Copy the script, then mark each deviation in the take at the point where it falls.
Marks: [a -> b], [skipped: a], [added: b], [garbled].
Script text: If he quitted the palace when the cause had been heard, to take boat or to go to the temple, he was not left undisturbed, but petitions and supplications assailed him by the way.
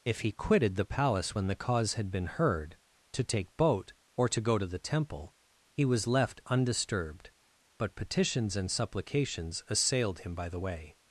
If he quitted the palace when the cause had been heard, to take boat or to go to the temple, he was [skipped: not] left undisturbed, but petitions and supplications assailed him by the way.